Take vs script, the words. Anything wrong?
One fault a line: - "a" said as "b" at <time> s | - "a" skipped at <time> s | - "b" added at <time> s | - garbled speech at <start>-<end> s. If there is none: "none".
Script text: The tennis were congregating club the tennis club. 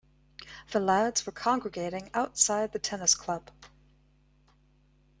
- "tennis" said as "lads" at 0.8 s
- "club" said as "outside" at 2.1 s